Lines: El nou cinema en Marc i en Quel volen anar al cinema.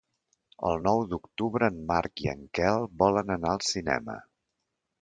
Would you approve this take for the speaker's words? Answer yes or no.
no